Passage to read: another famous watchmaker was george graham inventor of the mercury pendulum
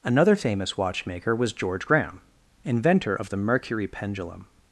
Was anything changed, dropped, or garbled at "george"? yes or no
no